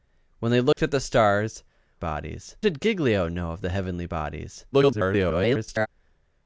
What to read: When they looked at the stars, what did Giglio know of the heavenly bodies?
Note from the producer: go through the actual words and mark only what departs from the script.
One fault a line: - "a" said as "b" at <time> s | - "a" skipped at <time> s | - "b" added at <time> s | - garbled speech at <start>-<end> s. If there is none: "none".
- "what" said as "bodies" at 2.0 s
- garbled speech at 4.7-5.9 s